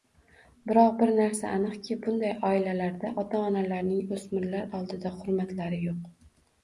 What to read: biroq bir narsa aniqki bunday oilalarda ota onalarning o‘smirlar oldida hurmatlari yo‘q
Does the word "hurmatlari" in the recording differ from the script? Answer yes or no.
no